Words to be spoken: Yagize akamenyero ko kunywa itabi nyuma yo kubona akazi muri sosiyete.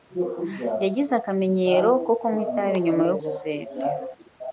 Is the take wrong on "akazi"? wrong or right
wrong